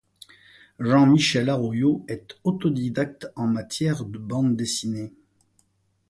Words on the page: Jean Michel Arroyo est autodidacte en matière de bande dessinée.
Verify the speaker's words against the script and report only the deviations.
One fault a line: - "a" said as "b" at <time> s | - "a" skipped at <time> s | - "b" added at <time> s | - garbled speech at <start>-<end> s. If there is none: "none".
none